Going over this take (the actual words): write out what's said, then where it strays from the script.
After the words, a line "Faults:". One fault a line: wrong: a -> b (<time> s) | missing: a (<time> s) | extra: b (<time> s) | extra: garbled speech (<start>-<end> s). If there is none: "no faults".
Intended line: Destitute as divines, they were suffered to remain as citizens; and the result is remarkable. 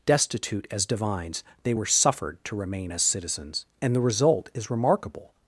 Destitute as divines, they were suffered to remain as citizens; and the result is remarkable.
Faults:
no faults